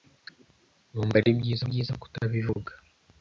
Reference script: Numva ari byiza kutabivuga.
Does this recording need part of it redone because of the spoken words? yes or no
yes